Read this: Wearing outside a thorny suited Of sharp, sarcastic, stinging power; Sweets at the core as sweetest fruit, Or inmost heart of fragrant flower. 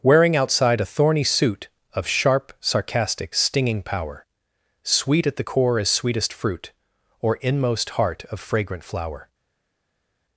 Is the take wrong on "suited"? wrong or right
wrong